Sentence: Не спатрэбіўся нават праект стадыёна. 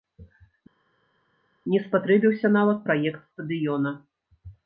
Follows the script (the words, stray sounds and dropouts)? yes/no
yes